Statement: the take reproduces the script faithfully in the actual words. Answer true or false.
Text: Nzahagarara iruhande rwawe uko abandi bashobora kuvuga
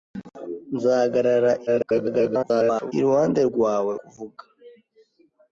false